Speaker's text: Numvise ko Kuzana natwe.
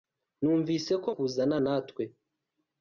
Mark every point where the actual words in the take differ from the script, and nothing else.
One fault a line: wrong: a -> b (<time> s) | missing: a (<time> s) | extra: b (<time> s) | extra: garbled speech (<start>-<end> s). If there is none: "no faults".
no faults